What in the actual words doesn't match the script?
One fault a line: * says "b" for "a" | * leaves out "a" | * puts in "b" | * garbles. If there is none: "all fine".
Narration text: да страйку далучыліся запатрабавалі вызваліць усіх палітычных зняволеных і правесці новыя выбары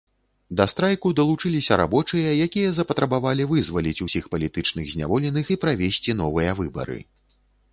* puts in "рабочыя якія"